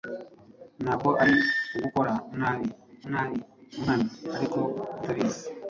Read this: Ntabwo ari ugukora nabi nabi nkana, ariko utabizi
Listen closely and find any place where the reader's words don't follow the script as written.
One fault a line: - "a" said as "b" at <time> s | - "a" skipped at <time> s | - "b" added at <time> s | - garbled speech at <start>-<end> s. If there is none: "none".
none